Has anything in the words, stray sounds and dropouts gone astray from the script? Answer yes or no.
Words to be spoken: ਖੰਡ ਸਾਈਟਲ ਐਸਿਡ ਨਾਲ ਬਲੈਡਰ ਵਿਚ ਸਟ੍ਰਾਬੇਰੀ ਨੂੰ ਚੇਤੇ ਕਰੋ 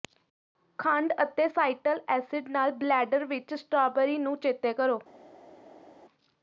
yes